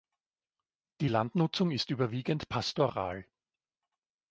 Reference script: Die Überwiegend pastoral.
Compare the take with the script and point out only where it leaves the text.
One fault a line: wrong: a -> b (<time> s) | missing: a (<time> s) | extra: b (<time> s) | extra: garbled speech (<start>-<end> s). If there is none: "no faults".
extra: Landnutzung ist (1.1 s)